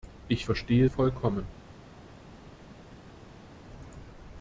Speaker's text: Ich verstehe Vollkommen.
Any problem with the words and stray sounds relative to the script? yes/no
no